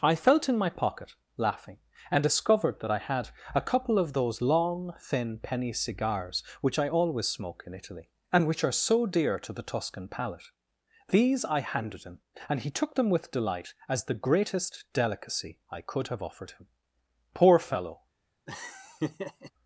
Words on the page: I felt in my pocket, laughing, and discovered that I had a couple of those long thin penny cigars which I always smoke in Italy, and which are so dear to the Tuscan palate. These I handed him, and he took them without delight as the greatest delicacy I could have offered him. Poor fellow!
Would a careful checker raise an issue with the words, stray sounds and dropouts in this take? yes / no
yes